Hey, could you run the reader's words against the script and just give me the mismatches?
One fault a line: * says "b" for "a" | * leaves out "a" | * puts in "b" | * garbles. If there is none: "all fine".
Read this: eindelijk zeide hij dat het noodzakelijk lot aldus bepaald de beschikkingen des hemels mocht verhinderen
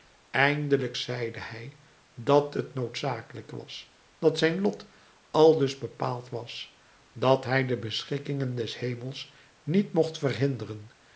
* puts in "was dat zijn"
* puts in "was dat hij"
* puts in "niet"